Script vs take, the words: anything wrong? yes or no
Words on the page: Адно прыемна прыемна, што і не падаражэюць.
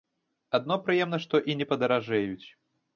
yes